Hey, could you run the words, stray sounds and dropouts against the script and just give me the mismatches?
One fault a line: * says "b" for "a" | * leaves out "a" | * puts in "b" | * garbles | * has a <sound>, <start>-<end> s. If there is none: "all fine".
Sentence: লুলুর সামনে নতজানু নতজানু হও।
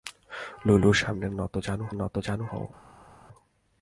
all fine